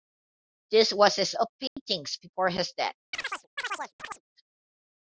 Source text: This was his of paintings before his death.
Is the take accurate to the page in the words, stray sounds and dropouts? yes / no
no